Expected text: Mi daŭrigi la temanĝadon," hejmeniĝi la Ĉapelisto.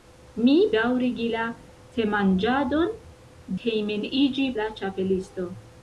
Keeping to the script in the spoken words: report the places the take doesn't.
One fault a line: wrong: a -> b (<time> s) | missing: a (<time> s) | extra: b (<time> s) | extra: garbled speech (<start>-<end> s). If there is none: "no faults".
no faults